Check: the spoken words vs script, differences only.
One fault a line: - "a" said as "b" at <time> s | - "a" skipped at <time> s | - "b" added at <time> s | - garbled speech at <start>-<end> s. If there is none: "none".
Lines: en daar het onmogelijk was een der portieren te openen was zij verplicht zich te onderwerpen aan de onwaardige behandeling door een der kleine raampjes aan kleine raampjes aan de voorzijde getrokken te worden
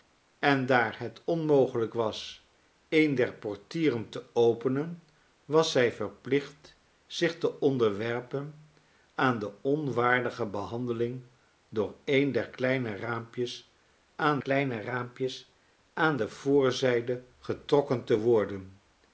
none